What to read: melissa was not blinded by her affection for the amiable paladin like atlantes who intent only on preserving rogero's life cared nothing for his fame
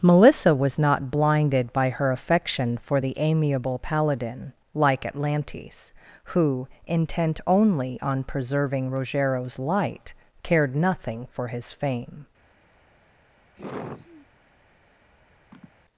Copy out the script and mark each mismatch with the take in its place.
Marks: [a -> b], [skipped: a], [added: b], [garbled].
melissa was not blinded by her affection for the amiable paladin like atlantes who intent only on preserving rogero's [life -> light] cared nothing for his fame